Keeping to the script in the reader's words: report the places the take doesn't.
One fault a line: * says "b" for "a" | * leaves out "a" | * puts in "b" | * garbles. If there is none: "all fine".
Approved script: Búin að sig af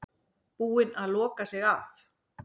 * puts in "loka"